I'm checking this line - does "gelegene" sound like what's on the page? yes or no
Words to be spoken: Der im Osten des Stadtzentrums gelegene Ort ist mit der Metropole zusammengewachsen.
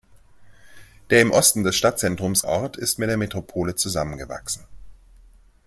no